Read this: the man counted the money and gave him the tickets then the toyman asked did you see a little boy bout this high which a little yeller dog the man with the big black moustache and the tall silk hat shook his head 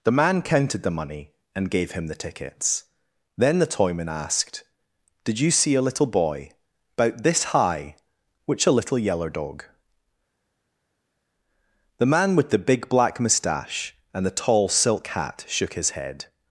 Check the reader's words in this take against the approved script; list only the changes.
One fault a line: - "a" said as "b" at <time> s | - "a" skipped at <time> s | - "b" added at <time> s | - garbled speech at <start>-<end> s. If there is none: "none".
none